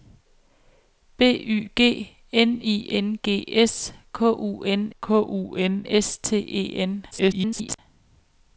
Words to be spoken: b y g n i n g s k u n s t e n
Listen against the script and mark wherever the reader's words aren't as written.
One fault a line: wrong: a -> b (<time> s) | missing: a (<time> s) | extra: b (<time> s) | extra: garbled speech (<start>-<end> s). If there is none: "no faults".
extra: k u n (5.0 s)
extra: garbled speech (7.1-7.8 s)